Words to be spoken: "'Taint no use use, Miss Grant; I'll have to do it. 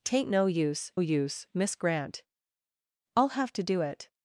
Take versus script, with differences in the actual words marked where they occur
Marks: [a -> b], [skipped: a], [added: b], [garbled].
"'Taint no use use, Miss Grant; I'll have to do it.